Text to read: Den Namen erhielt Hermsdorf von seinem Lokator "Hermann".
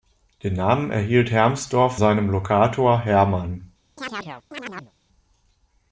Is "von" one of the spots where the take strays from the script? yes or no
yes